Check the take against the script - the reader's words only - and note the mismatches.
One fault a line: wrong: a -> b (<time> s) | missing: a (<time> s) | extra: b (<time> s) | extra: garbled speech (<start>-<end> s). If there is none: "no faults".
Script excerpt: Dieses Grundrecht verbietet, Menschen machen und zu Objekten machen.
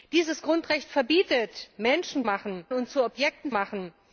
no faults